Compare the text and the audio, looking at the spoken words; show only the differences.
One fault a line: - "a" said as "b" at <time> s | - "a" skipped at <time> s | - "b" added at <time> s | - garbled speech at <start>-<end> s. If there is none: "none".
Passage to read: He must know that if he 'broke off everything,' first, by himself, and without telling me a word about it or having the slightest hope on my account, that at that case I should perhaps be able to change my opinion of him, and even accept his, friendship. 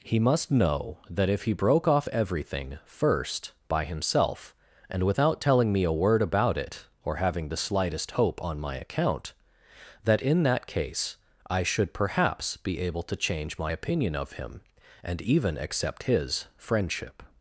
- "at" said as "in" at 10.2 s